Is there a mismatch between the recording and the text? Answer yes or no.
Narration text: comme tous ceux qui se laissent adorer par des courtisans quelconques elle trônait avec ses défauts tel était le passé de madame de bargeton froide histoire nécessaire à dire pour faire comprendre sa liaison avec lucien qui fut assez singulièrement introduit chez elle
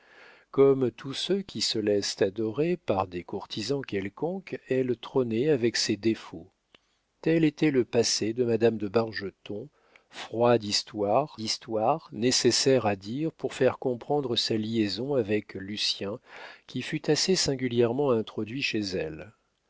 yes